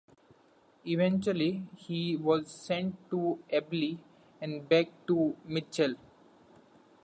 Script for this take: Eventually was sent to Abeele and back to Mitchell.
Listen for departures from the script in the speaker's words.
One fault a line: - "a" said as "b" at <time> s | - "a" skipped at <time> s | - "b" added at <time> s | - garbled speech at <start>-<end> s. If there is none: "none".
- "he" added at 1.8 s